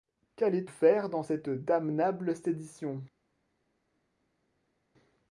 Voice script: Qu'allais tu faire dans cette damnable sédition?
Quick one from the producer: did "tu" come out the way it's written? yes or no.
no